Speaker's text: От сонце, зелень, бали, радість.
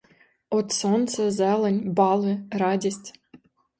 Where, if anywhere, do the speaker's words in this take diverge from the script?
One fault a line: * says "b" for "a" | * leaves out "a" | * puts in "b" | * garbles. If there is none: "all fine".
all fine